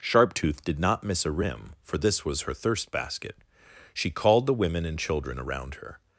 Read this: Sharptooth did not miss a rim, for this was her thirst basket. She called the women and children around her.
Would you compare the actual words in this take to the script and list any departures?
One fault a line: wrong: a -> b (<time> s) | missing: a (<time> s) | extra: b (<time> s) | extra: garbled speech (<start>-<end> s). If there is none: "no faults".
no faults